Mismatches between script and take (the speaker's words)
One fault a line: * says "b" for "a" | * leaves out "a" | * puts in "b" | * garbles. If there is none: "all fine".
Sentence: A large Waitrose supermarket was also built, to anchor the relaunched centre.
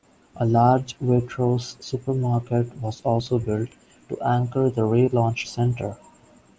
all fine